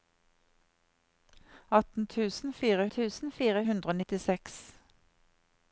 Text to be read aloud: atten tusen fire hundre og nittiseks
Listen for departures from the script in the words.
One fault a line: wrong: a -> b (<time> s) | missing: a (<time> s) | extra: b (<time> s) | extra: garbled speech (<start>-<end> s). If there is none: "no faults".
extra: tusen fire (2.9 s)